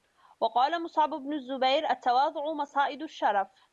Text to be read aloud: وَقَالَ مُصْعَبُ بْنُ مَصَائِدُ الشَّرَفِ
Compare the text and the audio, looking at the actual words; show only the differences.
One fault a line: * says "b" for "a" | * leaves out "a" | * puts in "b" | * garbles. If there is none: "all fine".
* puts in "الزُّبَيْرِ التَّوَاضُعُ"